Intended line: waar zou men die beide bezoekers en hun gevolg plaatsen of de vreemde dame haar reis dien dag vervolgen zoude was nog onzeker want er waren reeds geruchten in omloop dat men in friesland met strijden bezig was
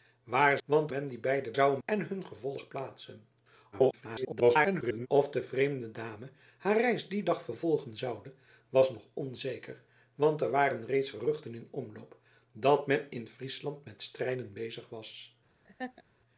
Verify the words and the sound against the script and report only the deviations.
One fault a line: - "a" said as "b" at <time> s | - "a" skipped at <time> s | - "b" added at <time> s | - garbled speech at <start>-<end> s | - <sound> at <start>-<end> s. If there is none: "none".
- "zou" said as "want" at 0.6 s
- "bezoekers" said as "zou" at 1.5 s
- garbled speech at 3.7-5.1 s
- laugh at 15.6-16.0 s